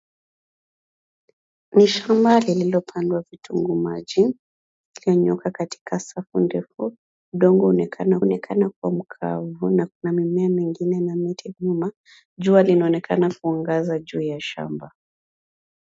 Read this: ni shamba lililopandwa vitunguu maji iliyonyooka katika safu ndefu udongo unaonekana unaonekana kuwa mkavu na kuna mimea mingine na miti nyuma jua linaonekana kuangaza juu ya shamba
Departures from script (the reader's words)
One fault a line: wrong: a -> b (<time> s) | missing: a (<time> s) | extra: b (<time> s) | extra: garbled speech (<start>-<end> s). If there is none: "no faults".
no faults